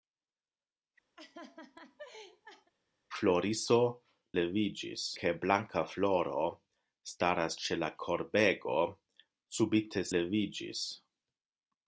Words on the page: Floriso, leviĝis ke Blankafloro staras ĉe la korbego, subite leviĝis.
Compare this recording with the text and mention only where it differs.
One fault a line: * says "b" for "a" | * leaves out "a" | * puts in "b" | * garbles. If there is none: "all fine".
all fine